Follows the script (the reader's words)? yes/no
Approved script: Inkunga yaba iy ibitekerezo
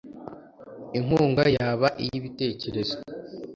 yes